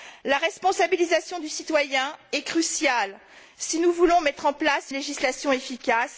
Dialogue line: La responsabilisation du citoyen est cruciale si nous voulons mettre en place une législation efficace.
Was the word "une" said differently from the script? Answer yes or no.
yes